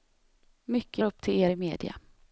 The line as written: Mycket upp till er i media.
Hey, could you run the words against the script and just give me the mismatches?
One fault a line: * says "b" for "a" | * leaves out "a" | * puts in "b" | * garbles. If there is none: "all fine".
all fine